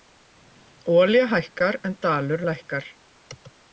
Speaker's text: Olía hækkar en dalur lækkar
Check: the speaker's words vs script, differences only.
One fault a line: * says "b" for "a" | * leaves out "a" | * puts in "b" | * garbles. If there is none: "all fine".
all fine